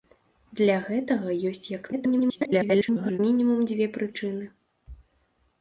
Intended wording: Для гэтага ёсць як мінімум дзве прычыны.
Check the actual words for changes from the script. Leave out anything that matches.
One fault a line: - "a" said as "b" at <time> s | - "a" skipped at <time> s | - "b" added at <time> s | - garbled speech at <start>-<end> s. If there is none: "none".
- garbled speech at 1.9-3.2 s